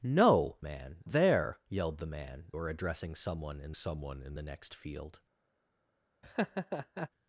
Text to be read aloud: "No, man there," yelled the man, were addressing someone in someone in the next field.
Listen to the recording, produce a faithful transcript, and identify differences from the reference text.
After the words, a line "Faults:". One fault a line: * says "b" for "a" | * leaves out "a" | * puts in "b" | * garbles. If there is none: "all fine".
"No, man there," yelled the man, were addressing someone in someone in the next field.
Faults:
all fine